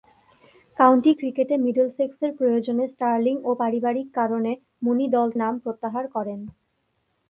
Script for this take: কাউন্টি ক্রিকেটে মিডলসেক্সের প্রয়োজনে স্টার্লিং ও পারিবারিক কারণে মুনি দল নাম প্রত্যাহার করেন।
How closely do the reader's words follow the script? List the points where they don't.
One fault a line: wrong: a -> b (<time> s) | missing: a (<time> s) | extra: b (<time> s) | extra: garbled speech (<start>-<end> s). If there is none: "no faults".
no faults